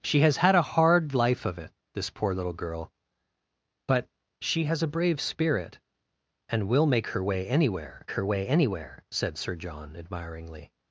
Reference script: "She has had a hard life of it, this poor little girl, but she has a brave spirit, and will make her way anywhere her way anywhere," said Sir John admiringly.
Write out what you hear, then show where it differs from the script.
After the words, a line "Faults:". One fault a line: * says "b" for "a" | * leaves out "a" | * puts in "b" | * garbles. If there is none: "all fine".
"She has had a hard life of it, this poor little girl, but she has a brave spirit, and will make her way anywhere her way anywhere," said Sir John admiringly.
Faults:
all fine